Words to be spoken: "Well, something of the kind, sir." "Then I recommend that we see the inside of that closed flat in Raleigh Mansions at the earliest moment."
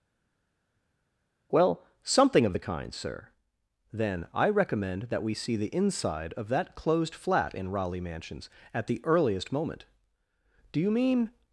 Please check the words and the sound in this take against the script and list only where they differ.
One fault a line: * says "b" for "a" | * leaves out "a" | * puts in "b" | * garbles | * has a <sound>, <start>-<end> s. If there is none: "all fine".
* puts in "Do you mean"